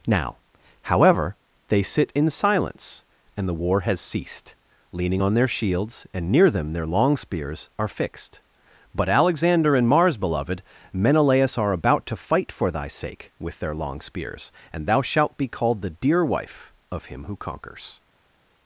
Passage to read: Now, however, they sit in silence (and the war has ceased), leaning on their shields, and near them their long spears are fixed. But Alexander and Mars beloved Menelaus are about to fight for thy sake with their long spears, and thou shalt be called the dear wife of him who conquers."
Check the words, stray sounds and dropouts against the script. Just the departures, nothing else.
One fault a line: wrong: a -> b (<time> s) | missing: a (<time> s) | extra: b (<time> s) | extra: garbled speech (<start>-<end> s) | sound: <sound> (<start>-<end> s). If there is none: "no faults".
no faults